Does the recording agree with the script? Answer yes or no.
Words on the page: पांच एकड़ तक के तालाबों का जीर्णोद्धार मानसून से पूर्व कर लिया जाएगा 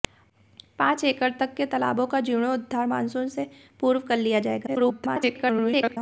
no